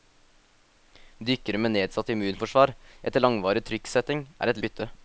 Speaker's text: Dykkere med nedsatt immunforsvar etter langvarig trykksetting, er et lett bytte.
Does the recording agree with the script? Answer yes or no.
no